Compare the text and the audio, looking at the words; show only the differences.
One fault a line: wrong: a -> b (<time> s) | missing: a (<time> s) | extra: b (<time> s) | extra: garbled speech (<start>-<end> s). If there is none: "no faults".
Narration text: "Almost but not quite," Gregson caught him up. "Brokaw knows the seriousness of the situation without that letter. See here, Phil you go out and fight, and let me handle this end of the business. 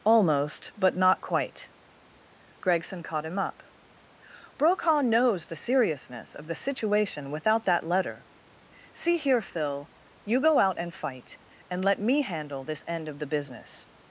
no faults